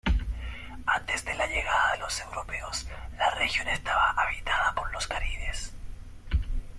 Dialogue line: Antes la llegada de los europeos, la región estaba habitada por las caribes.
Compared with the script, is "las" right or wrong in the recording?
wrong